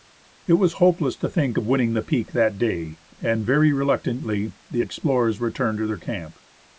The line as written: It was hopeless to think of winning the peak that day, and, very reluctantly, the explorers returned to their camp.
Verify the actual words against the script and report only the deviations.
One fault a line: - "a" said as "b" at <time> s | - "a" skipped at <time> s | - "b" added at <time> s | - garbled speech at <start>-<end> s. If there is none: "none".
none